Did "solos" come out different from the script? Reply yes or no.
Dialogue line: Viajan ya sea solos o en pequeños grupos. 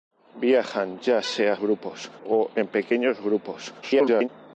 yes